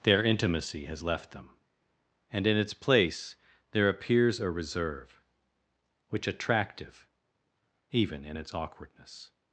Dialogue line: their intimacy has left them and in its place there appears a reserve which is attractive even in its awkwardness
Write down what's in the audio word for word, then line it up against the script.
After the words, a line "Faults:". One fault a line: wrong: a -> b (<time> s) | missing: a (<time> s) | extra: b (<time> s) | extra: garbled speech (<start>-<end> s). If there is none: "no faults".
their intimacy has left them and in its place there appears a reserve which attractive even in its awkwardness
Faults:
missing: is (6.3 s)